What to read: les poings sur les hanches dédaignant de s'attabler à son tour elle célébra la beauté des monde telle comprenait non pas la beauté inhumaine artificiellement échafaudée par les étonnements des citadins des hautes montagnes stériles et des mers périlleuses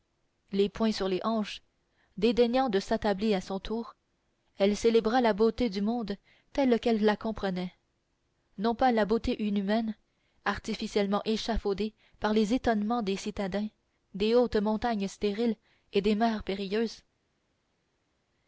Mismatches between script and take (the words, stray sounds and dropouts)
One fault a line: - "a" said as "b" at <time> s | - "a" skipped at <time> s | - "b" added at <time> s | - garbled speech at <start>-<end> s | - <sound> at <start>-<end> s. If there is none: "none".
- "des" said as "du" at 5.7 s
- "qu'elle la" added at 6.8 s